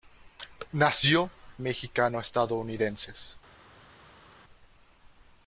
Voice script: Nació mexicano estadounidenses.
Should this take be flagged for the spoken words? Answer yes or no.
no